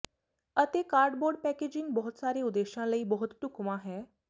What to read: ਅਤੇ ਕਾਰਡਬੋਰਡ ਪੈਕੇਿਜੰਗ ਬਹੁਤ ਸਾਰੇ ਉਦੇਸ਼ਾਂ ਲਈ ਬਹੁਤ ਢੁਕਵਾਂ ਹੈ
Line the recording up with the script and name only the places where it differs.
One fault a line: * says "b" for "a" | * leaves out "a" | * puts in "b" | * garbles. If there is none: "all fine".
all fine